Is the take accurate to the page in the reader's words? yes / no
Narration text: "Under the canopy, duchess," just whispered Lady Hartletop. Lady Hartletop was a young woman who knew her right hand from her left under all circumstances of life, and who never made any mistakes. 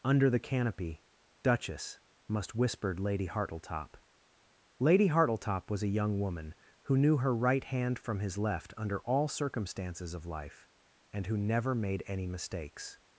no